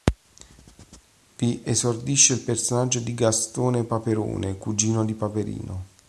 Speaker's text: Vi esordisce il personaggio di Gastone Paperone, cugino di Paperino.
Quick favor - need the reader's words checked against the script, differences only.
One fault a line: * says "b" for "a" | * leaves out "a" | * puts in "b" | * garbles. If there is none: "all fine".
all fine